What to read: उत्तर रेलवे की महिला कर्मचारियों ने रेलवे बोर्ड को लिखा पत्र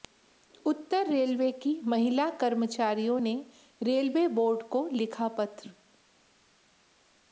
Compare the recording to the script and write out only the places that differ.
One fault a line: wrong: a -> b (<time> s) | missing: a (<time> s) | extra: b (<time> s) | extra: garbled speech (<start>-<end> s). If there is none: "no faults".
no faults